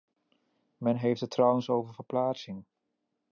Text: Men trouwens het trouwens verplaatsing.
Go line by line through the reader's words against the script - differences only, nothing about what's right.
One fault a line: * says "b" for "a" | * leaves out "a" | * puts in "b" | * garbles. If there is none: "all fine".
* says "heeft" for "trouwens"
* puts in "over"